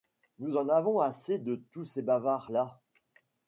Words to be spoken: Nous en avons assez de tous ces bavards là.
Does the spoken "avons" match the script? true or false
true